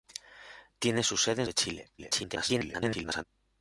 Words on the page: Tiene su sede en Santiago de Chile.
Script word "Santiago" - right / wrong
wrong